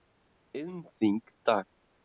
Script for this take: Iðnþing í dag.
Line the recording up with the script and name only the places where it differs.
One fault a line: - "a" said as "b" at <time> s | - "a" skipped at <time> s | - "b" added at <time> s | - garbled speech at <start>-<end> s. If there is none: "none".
none